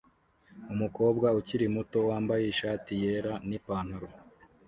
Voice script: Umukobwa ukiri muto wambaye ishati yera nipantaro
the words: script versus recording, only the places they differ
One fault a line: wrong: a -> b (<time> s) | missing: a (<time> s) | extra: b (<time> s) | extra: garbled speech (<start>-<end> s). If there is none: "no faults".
no faults